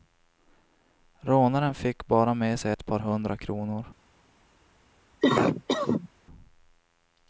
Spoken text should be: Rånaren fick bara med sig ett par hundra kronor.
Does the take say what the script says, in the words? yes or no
yes